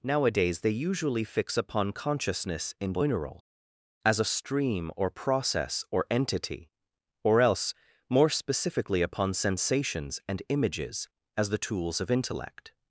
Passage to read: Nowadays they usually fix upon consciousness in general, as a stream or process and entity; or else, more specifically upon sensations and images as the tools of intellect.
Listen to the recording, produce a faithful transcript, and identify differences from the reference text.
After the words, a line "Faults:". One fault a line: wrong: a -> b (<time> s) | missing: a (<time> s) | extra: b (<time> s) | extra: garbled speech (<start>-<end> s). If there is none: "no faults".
Nowadays they usually fix upon consciousness in general, as a stream or process or entity; or else, more specifically upon sensations and images as the tools of intellect.
Faults:
wrong: and -> or (5.9 s)